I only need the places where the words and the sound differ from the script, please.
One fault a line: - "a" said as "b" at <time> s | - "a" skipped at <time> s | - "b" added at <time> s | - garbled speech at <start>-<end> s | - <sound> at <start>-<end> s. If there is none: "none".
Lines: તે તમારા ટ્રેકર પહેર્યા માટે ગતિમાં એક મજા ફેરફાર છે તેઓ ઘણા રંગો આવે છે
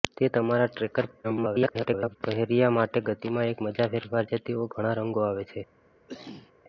- garbled speech at 1.2-2.2 s
- cough at 6.1-6.5 s